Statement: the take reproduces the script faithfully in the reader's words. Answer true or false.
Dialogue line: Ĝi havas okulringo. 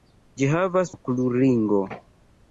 true